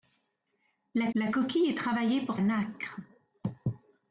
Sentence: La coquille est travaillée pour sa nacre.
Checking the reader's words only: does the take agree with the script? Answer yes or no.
no